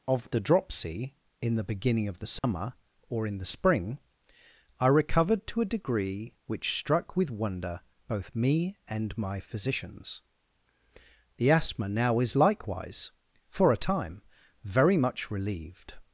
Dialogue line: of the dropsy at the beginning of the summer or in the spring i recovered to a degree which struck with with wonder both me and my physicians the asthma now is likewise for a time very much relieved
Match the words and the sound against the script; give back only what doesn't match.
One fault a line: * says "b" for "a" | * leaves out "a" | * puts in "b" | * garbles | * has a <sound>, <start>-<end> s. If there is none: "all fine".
* says "in" for "at"
* has a dropout, 2.4-2.4 s
* leaves out "with"